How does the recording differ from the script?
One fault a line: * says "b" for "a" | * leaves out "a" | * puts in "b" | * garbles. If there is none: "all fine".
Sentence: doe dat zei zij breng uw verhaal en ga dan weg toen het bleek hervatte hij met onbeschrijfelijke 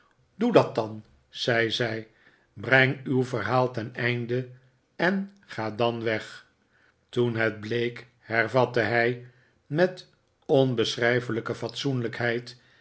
* puts in "dan"
* puts in "ten einde"